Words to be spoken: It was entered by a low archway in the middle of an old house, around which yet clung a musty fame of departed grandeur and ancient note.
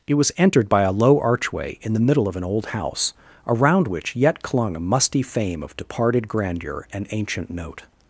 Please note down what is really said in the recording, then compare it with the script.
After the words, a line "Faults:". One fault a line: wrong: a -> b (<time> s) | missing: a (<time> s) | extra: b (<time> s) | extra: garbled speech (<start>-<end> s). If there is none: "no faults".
It was entered by a low archway in the middle of an old house, around which yet clung a musty fame of departed grandeur and ancient note.
Faults:
no faults